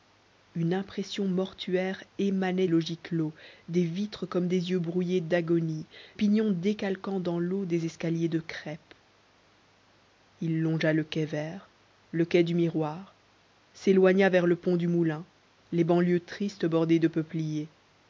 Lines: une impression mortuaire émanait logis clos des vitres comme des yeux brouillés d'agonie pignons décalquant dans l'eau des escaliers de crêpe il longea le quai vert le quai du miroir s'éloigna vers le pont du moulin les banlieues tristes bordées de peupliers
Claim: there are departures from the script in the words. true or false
false